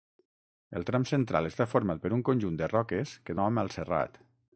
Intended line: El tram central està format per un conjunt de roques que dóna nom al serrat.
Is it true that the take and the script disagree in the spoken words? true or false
true